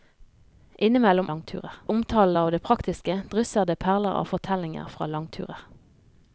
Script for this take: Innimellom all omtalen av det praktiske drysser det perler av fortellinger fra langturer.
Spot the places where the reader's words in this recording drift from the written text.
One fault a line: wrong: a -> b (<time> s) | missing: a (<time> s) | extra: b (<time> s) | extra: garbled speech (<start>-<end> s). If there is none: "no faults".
wrong: all -> langturer (1.3 s)